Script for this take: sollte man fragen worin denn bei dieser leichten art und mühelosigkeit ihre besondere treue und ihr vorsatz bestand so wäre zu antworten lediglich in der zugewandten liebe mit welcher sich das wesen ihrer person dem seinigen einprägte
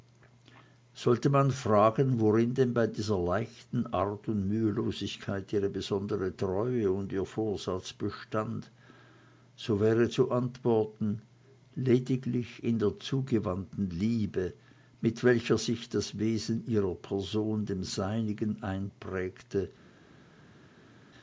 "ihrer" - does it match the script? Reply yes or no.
yes